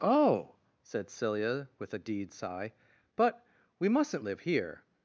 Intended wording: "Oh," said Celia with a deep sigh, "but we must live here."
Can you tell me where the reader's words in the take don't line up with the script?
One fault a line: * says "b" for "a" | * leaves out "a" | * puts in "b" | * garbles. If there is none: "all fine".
* says "deed" for "deep"
* says "mustn't" for "must"